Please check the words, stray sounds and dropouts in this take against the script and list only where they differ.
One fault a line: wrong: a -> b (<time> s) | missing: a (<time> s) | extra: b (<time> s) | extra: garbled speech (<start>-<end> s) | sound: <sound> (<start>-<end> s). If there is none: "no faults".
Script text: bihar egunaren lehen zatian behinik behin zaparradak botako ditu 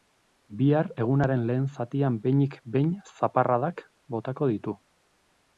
no faults